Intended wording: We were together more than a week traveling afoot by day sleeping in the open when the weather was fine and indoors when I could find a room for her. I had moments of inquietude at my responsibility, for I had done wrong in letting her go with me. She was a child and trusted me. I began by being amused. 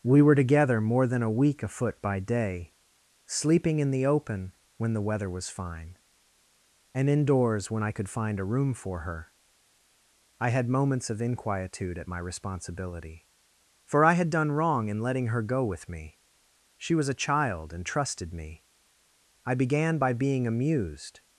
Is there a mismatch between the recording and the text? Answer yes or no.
yes